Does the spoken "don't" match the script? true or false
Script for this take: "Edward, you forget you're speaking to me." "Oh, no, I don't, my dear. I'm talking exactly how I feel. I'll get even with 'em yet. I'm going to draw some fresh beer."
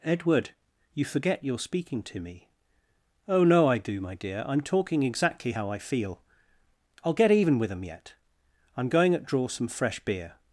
false